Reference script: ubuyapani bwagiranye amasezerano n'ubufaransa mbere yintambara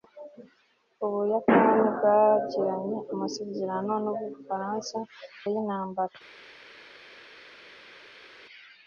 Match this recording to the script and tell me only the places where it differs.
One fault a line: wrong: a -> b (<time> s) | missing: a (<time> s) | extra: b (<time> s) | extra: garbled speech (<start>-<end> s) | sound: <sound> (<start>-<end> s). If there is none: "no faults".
missing: mbere (5.0 s)